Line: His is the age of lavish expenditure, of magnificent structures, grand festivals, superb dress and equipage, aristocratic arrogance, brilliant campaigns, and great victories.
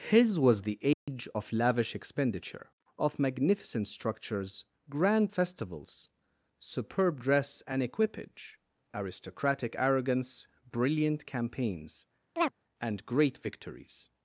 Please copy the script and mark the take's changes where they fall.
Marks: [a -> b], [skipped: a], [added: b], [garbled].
His [is -> was] the age of lavish expenditure, of magnificent structures, grand festivals, superb dress and equipage, aristocratic arrogance, brilliant campaigns, and great victories.